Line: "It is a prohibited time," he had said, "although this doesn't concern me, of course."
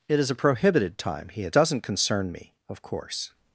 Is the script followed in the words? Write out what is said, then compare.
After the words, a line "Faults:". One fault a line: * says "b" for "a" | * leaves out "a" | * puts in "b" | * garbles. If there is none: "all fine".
"It is a prohibited time," he had doesn't concern me, of course."
Faults:
* leaves out "said although this"